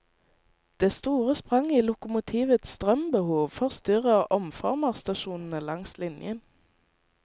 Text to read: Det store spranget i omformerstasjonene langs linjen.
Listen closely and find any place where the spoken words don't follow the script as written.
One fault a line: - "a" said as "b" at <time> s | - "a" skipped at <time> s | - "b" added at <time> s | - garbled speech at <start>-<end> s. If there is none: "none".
- "lokomotivets strømbehov forstyrrer" added at 1.8 s